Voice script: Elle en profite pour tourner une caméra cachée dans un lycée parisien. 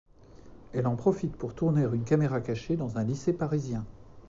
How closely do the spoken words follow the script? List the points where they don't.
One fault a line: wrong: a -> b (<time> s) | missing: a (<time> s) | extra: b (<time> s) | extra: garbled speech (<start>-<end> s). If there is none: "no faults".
no faults